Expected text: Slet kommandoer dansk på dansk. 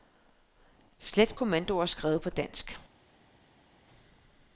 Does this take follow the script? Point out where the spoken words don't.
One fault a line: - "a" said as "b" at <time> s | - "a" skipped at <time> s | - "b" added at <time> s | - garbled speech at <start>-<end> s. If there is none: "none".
- "dansk" said as "skrevet" at 1.8 s